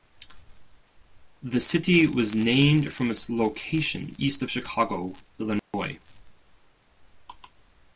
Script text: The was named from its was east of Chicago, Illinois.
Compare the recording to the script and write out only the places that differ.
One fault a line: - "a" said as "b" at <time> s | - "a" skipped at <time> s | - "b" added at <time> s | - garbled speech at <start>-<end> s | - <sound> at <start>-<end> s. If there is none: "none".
- "city" added at 1.6 s
- "was" said as "location" at 3.3 s
- dropout at 5.6-5.7 s